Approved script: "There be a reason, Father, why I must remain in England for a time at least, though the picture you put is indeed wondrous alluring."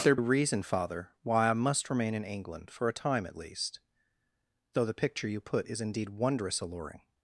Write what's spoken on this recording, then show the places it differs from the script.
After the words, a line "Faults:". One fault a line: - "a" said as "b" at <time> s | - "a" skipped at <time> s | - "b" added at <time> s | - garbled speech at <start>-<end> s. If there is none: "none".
"There a reason, Father, why I must remain in England for a time at least, though the picture you put is indeed wondrous alluring."
Faults:
- "be" skipped at 0.1 s